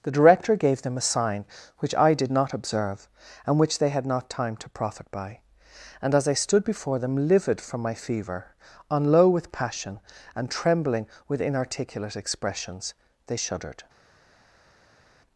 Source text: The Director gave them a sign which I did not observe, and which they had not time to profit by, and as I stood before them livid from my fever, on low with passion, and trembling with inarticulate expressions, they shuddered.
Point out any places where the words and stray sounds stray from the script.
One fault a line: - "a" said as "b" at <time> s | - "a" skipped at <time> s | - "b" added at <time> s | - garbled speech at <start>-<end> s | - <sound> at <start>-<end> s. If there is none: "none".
none